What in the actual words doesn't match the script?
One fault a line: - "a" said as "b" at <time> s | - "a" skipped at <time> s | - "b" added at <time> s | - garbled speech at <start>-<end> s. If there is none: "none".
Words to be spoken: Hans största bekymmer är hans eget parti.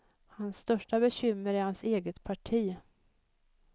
none